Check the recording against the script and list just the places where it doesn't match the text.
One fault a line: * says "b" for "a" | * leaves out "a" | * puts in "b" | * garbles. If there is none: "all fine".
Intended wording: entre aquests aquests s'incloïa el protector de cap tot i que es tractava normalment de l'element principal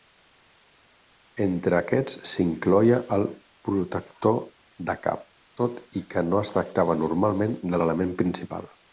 * leaves out "aquests"
* puts in "no"